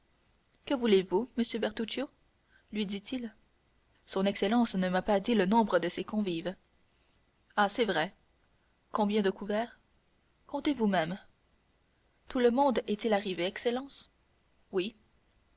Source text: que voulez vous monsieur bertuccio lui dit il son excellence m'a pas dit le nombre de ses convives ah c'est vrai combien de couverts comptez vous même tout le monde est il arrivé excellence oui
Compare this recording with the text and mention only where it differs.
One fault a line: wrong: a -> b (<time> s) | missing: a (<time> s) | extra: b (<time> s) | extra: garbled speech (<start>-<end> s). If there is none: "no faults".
extra: ne (4.7 s)